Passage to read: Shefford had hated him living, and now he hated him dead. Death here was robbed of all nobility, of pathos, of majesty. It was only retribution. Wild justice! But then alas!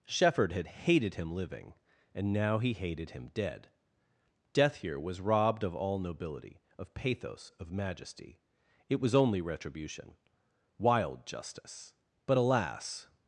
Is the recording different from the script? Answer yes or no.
yes